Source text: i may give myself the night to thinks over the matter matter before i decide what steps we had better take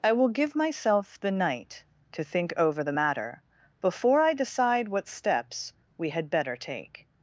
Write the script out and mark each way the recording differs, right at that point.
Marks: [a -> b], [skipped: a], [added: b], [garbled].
i [may -> will] give myself the night to [thinks -> think] over the matter [skipped: matter] before i decide what steps we had better take